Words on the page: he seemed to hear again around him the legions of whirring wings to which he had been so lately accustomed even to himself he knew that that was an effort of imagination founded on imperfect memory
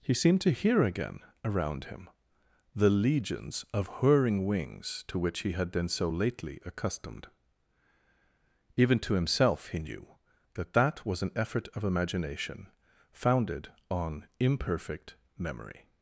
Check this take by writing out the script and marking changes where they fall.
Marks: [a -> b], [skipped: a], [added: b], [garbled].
he seemed to hear again around him the legions of whirring wings to which he had been so lately accustomed even to himself he knew that that was an effort of imagination founded on imperfect memory